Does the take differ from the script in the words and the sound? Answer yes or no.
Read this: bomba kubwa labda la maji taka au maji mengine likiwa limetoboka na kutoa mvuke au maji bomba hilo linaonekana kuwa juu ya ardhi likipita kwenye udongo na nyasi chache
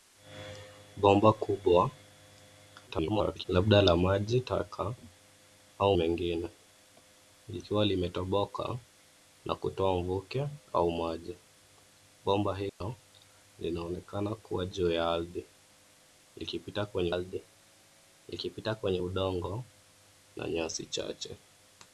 yes